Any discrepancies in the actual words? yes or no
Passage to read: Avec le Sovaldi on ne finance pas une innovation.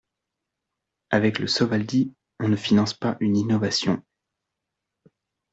no